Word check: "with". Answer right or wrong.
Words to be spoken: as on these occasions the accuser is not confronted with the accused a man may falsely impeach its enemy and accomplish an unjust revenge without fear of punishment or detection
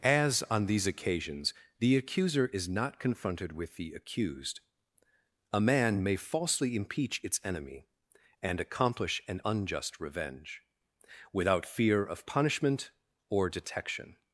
right